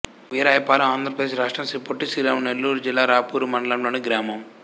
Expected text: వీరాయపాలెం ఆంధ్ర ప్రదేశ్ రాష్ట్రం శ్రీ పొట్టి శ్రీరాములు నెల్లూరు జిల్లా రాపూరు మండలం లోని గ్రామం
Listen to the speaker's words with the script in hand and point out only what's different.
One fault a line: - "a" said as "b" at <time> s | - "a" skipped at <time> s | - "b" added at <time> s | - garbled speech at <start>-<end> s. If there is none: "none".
none